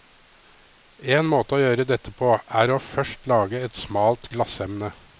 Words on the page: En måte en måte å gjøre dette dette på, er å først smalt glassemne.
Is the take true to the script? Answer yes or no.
no